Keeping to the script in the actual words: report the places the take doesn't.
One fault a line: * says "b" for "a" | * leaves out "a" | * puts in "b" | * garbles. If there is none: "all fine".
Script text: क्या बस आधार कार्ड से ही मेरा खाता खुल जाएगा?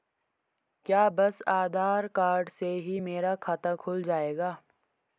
all fine